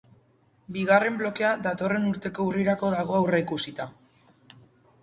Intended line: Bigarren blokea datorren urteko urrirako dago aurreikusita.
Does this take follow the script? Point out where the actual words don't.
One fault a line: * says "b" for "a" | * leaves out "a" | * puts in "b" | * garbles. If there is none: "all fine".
all fine